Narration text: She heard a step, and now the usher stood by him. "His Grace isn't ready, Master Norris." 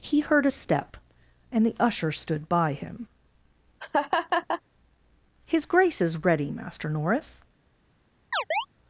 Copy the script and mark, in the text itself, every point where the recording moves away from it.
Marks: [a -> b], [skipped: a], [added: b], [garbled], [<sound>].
[She -> He] heard a step, and [skipped: now] the usher stood by him. [laugh] "His Grace [isn't -> is] ready, Master Norris." [chirp]